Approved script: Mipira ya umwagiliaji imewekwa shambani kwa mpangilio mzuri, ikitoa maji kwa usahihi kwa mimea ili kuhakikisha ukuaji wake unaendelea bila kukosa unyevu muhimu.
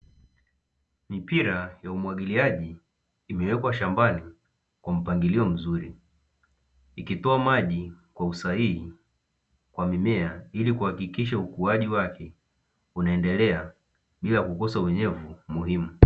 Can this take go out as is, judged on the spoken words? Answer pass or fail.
pass